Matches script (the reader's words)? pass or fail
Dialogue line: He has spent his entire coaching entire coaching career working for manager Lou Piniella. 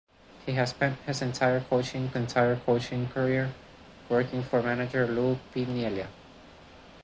pass